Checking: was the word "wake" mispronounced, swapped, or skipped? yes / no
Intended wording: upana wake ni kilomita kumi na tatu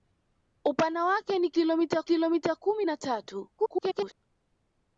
no